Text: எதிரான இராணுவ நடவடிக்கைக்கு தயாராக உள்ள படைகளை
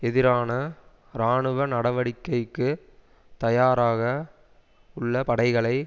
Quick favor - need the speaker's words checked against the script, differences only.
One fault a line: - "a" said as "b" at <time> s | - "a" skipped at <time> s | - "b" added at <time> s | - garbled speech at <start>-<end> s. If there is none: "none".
none